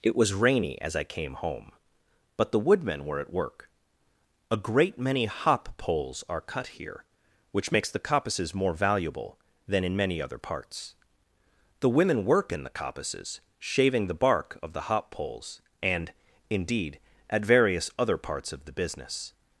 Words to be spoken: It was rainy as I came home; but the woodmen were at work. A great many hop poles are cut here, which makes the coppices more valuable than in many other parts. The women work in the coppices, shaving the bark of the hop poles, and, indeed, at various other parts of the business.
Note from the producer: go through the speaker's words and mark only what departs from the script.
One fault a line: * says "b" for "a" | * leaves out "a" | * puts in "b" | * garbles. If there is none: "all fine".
all fine